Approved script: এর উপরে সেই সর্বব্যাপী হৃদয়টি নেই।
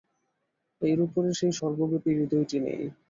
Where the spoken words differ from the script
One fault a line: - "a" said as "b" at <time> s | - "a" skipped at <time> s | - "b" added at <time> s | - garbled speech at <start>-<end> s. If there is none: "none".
none